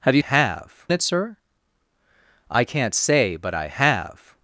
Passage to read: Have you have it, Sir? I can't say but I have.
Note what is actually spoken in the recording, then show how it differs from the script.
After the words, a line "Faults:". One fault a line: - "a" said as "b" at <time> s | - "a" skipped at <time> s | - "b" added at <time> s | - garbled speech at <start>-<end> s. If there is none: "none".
Have you have it, Sir? I can't say but I have.
Faults:
none